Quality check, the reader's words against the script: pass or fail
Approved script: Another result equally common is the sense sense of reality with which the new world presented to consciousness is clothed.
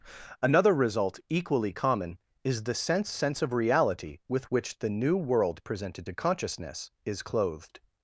pass